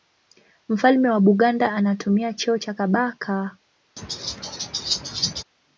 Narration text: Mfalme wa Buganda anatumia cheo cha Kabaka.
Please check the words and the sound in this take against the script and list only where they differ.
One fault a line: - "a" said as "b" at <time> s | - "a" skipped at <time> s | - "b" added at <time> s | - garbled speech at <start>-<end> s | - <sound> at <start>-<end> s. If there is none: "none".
- laugh at 4.0-5.4 s